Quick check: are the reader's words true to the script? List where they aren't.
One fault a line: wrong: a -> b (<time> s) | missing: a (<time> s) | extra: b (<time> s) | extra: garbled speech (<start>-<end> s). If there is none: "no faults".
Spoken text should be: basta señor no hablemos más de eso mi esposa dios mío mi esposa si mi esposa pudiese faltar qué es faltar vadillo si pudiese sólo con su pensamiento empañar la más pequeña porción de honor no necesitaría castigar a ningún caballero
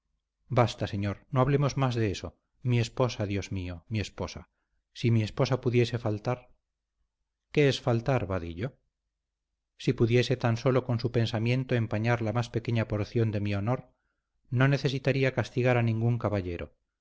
extra: tan (10.4 s)
extra: mi (13.4 s)